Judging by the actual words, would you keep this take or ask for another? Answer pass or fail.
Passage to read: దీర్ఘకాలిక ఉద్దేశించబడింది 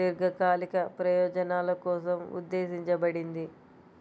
fail